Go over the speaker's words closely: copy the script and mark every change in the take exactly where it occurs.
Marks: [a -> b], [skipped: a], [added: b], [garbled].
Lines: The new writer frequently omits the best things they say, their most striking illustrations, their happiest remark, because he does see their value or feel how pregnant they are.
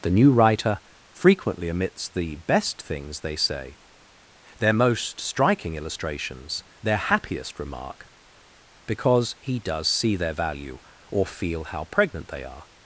The new writer frequently omits the best things they say, their most striking illustrations, their happiest remark, because he does see their value or feel how pregnant they are.